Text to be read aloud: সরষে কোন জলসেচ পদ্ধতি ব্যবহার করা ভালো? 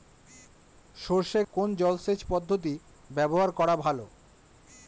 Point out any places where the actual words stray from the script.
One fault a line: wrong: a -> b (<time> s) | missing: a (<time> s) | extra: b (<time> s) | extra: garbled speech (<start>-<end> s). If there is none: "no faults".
no faults